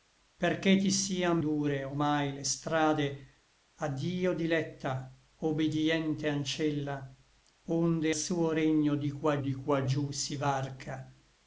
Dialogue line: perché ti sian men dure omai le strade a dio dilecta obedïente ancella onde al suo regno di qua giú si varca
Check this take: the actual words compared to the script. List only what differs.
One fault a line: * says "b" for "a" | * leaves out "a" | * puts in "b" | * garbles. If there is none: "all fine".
* leaves out "men"
* leaves out "al"
* puts in "di qua"